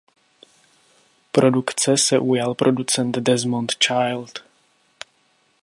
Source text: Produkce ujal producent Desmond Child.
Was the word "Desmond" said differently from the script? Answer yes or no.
no